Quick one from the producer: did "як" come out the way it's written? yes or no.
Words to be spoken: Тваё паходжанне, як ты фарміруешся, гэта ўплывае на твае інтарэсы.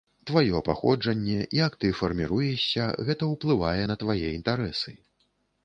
yes